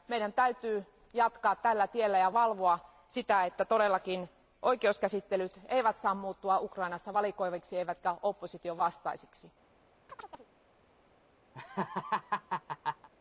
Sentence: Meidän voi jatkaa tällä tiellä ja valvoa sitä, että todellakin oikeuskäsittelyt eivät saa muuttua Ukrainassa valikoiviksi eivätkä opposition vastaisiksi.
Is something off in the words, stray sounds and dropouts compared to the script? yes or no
yes